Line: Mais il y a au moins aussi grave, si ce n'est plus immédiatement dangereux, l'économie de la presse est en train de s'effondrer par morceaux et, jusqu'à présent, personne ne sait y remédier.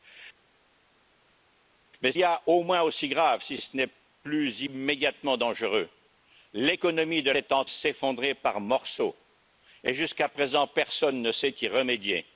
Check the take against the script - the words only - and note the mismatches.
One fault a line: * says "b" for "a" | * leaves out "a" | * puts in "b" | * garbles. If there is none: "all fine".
* leaves out "il"
* leaves out "la presse"
* leaves out "train de"